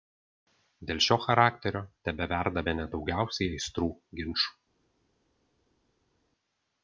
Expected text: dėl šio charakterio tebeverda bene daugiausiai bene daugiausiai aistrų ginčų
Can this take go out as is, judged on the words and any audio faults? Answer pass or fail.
fail